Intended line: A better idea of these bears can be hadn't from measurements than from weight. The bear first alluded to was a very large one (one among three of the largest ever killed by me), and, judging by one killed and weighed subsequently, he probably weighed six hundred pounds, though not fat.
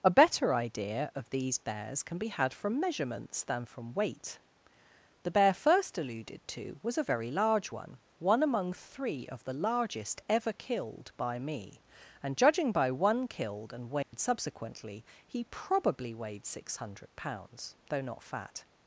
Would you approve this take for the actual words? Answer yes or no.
no